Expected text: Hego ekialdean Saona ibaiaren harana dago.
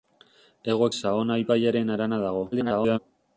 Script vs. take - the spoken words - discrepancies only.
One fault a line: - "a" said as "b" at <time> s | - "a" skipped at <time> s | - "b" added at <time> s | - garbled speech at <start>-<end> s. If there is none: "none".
- "ekialdean" skipped at 0.9 s
- garbled speech at 2.5-3.0 s